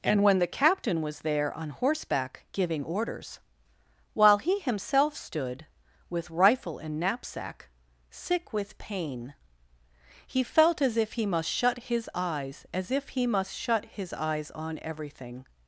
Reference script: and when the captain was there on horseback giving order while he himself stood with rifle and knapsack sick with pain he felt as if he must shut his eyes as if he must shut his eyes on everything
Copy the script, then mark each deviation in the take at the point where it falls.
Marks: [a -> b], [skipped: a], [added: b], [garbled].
and when the captain was there on horseback giving [order -> orders] while he himself stood with rifle and knapsack sick with pain he felt as if he must shut his eyes as if he must shut his eyes on everything